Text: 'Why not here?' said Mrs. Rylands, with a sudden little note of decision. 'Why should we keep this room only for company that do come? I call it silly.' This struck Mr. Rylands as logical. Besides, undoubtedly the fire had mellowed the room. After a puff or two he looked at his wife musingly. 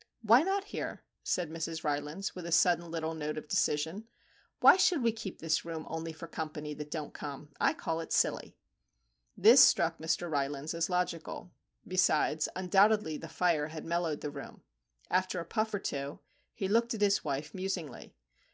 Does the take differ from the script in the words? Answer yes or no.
yes